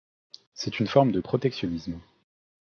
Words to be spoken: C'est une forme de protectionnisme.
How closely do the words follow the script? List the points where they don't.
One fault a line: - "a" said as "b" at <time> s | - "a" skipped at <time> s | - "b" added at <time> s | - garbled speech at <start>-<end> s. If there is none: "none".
none